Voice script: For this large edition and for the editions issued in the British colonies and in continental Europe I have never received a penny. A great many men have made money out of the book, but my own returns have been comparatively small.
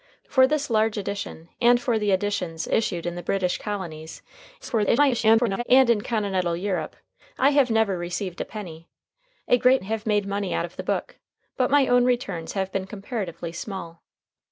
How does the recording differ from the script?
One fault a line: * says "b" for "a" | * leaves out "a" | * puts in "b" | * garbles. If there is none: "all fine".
* garbles
* leaves out "many men"